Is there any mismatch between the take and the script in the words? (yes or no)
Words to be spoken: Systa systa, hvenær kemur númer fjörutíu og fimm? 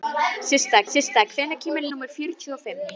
no